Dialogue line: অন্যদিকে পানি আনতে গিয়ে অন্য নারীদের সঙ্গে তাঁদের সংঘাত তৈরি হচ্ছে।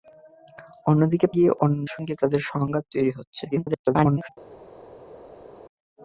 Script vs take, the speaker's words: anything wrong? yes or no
yes